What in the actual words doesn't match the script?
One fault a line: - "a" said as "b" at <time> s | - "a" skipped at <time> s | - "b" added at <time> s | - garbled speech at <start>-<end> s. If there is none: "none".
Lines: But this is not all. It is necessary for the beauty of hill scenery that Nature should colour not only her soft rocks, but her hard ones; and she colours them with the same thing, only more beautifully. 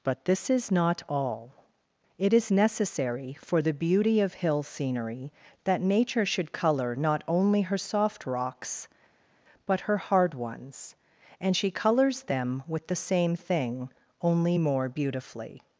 none